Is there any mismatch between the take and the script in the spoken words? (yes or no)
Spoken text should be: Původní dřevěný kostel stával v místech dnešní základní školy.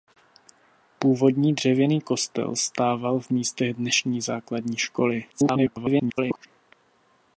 yes